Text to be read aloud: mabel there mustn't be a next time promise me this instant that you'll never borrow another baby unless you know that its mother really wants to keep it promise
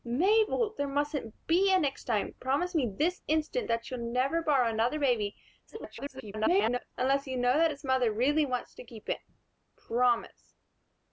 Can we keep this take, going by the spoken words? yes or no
no